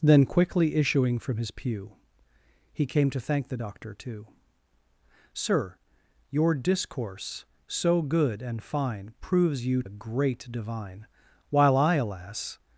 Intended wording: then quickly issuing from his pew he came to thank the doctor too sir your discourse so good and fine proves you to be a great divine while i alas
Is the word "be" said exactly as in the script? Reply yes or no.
no